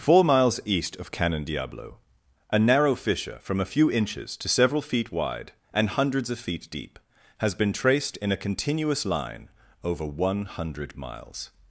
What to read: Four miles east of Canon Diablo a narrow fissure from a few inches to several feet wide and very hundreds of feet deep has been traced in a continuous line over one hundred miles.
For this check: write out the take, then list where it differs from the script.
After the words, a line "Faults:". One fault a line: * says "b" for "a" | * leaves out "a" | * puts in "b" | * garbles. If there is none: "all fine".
Four miles east of Canon Diablo a narrow fissure from a few inches to several feet wide and hundreds of feet deep has been traced in a continuous line over one hundred miles.
Faults:
* leaves out "very"